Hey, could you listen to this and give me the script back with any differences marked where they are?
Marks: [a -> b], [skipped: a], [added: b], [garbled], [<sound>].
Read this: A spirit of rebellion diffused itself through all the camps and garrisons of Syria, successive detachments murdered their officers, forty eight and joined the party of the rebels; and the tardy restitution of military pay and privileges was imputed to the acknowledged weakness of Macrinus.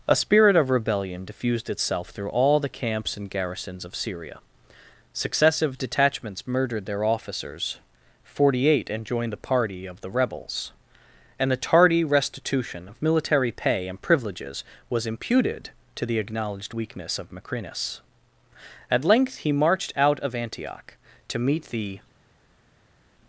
A spirit of rebellion diffused itself through all the camps and garrisons of Syria, successive detachments murdered their officers, forty eight and joined the party of the rebels; and the tardy restitution of military pay and privileges was imputed to the acknowledged weakness of Macrinus. [added: At length he marched out of Antioch to meet the]